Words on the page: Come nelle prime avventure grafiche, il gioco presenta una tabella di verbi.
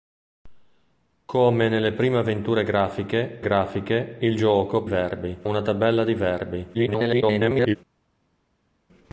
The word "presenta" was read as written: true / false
false